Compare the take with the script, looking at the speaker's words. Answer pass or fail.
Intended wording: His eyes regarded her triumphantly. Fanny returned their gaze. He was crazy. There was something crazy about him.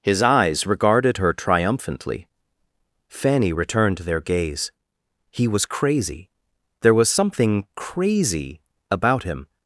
pass